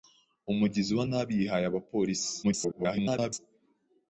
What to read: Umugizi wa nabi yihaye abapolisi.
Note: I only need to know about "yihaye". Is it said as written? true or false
true